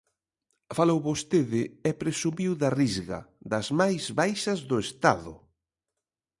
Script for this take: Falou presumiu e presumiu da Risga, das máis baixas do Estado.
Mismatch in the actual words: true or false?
true